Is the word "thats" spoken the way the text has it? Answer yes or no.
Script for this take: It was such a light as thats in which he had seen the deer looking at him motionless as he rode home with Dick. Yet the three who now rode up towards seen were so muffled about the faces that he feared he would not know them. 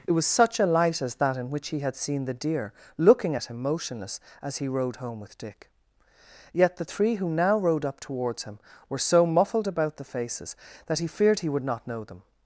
no